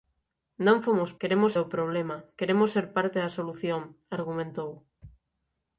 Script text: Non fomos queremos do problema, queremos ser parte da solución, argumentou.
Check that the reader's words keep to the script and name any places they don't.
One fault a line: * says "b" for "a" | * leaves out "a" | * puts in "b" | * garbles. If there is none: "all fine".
all fine